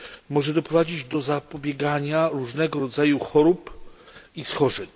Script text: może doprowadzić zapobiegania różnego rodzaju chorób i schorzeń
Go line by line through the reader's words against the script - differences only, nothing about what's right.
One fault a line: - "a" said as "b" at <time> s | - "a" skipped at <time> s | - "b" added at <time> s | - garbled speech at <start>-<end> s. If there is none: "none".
- "do" added at 1.1 s